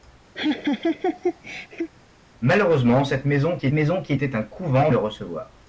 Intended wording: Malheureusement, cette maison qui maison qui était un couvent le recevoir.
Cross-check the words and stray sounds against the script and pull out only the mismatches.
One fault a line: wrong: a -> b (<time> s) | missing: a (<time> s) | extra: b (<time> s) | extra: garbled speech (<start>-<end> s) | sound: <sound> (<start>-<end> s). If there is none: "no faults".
sound: laugh (0.3-1.9 s)